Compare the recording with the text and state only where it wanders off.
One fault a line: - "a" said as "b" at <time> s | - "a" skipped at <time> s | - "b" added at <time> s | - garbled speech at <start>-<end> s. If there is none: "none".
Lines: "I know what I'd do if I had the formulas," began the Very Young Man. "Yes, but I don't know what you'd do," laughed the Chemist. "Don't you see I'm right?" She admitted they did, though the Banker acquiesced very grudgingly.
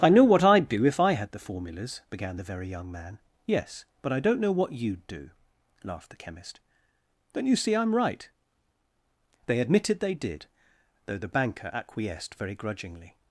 - "She" said as "They" at 9.5 s